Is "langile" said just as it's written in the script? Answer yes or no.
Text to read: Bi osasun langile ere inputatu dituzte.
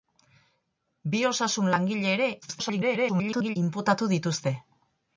yes